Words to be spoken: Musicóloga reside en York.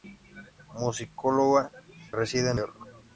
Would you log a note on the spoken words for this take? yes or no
no